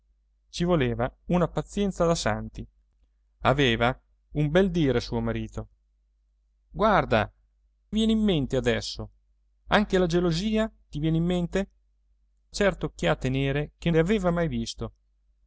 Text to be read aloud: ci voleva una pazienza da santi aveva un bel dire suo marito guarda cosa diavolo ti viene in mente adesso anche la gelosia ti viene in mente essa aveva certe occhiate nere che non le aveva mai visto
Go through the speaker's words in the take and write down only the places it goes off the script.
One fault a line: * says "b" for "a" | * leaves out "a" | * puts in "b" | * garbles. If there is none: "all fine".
* leaves out "cosa diavolo ti"
* leaves out "essa aveva"
* leaves out "non"